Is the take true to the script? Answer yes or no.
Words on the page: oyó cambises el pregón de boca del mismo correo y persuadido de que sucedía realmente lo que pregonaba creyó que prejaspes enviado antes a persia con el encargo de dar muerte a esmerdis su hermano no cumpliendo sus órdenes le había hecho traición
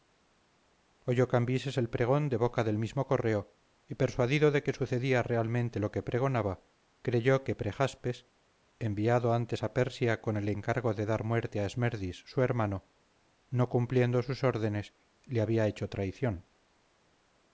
yes